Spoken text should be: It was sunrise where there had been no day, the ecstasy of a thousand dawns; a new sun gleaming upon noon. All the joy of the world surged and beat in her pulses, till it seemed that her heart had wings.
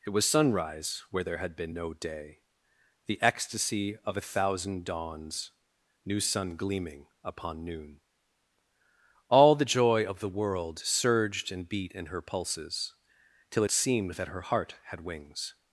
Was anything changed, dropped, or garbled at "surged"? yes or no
no